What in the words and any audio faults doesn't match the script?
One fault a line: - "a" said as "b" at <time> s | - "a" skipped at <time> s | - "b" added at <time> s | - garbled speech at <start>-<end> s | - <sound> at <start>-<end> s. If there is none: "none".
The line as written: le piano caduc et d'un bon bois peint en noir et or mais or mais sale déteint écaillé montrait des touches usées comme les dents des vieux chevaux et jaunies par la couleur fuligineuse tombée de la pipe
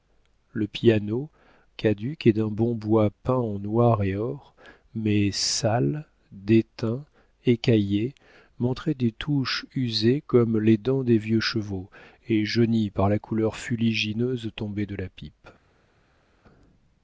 - "or mais" skipped at 5.3 s